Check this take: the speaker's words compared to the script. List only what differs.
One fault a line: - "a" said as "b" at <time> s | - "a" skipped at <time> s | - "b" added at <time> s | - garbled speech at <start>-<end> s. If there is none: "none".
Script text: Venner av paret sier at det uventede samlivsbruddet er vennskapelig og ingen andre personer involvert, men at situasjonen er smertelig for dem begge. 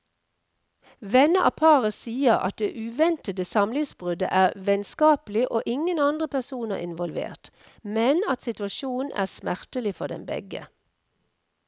none